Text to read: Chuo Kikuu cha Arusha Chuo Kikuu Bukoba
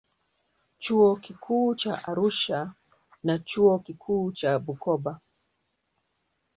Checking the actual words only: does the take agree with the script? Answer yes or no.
no